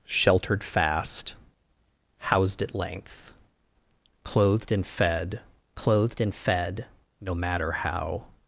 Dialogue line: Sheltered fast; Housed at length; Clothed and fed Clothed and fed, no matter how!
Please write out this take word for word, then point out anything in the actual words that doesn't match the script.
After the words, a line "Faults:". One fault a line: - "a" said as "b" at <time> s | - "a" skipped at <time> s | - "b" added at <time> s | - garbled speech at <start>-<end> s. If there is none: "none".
Sheltered fast; Housed at length; Clothed and fed Clothed and fed, no matter how!
Faults:
none